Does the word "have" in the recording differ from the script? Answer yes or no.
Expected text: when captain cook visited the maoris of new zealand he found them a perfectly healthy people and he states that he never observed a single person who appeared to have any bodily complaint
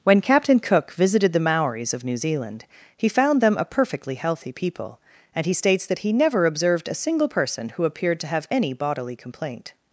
no